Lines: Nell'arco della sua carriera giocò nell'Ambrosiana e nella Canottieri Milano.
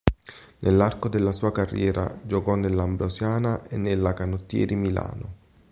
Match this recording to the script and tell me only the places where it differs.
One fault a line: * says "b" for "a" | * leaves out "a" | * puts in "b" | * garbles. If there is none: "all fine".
all fine